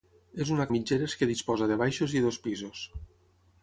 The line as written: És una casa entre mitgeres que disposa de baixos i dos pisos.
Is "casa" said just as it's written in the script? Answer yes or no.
no